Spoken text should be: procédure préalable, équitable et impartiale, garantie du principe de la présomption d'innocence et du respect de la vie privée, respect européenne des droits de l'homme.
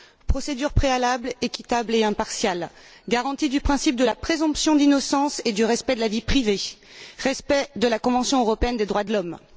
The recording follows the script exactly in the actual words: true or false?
false